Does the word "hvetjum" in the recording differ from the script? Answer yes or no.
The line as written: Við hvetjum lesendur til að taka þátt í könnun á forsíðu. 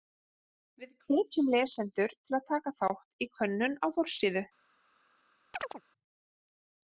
no